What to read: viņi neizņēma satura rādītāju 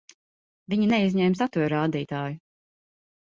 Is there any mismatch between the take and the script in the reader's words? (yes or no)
no